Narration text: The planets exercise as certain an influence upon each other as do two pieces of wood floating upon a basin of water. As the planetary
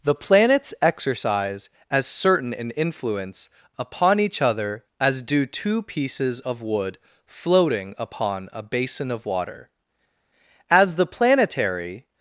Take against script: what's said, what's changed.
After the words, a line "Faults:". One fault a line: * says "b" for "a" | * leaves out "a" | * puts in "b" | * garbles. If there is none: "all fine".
The planets exercise as certain an influence upon each other as do two pieces of wood floating upon a basin of water. As the planetary
Faults:
all fine